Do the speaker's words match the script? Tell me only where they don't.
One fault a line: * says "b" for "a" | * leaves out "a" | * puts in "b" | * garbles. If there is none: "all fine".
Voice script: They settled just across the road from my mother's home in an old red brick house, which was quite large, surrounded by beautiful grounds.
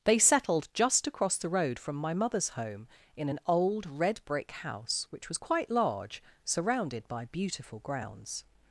all fine